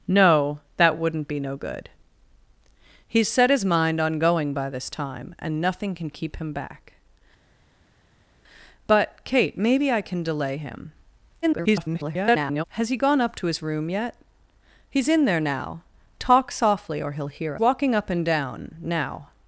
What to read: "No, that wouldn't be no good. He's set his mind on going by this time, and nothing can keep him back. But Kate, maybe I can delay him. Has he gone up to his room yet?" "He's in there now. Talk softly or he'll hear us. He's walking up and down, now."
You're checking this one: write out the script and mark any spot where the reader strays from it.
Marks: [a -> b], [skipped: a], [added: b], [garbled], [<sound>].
"No, that wouldn't be no good. He's set his mind on going by this time, and nothing can keep him back. But Kate, maybe I can delay him. [garbled] Has he gone up to his room yet?" "He's in there now. Talk softly or he'll hear [skipped: us. He's] walking up and down, now."